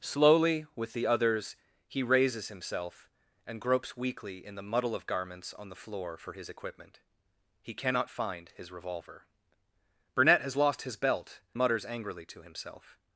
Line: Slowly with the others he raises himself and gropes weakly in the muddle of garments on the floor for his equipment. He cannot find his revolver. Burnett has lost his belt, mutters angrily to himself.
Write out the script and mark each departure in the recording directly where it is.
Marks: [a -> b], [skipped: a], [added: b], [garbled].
Slowly with the others he raises himself and gropes weakly in the muddle of garments on the floor for his equipment. He cannot find his revolver. Burnett has lost his belt, mutters angrily to himself.